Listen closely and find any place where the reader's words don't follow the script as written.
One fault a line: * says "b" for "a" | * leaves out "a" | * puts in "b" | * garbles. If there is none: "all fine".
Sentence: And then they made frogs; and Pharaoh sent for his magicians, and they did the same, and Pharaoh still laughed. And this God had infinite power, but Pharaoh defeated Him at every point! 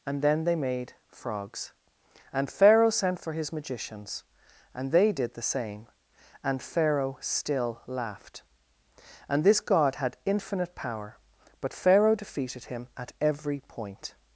all fine